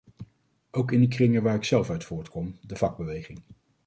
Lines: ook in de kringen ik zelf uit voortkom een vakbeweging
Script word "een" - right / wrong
wrong